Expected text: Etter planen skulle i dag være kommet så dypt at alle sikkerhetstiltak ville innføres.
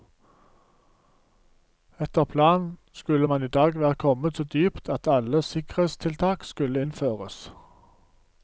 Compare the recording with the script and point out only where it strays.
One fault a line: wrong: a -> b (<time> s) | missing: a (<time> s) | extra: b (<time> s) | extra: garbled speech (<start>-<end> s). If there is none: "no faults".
extra: man (3.2 s)
wrong: ville -> skulle (6.4 s)